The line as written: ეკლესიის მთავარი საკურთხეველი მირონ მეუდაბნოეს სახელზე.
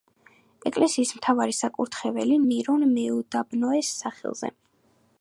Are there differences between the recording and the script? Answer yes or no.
no